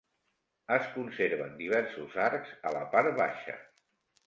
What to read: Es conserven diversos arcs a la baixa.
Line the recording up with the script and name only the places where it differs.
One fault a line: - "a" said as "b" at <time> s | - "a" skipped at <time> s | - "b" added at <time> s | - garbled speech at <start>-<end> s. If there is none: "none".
- "part" added at 3.0 s